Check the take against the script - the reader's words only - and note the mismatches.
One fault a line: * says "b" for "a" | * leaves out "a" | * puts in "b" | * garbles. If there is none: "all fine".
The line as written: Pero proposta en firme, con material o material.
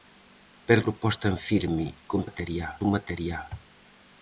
all fine